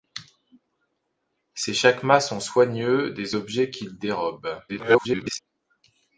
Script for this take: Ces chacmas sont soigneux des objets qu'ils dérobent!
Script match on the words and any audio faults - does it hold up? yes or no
no